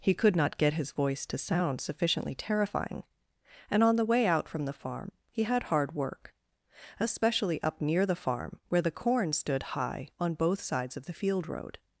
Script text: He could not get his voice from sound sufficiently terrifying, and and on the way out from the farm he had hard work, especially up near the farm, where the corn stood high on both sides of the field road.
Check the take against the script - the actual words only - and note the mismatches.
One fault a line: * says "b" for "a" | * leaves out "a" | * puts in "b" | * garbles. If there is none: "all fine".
* says "to" for "from"
* leaves out "and"